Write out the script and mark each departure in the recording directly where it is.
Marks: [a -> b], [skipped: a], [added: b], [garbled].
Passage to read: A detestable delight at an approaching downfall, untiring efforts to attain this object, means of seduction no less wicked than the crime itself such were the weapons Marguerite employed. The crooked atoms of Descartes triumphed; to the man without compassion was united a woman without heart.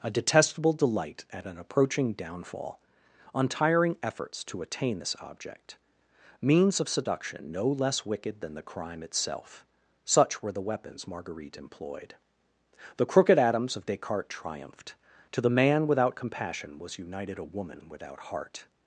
A detestable delight at an approaching downfall, untiring efforts to attain this object, means of seduction no less wicked than the crime itself such were the weapons Marguerite employed. The crooked atoms of Descartes triumphed; to the man without compassion was united a woman without heart.